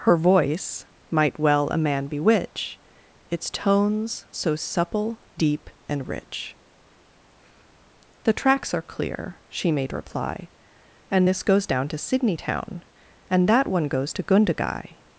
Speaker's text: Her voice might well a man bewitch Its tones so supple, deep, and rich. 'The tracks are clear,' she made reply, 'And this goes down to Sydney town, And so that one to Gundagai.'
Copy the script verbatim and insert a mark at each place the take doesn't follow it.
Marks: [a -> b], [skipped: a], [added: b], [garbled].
Her voice might well a man bewitch Its tones so supple, deep, and rich. 'The tracks are clear,' she made reply, 'And this goes down to Sydney town, And [skipped: so] that one [added: goes] to Gundagai.'